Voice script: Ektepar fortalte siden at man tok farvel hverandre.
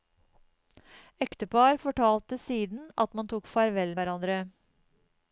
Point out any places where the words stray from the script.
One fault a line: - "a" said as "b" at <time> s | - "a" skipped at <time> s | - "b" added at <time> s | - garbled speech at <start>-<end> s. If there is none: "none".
none